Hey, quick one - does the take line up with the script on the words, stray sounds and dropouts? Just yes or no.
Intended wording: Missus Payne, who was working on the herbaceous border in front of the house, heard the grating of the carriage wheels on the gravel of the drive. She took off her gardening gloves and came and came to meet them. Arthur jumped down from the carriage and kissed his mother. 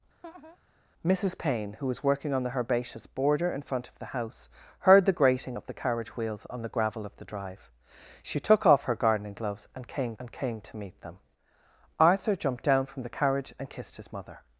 no